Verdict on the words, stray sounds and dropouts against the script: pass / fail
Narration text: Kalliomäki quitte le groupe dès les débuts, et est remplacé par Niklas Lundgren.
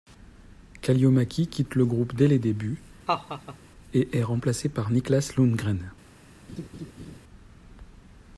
fail